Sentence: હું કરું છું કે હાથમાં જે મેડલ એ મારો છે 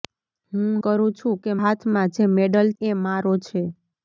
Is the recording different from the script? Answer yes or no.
no